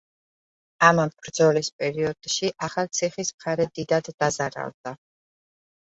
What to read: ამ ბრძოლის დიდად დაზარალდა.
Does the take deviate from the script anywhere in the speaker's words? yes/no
yes